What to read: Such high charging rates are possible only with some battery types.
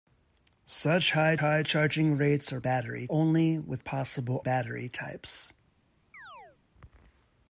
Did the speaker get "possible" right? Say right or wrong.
wrong